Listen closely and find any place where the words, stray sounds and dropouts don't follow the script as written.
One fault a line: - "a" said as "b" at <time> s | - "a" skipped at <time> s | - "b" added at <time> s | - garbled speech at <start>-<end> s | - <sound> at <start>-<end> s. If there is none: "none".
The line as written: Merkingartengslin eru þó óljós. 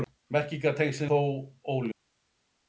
- "eru" skipped at 1.1 s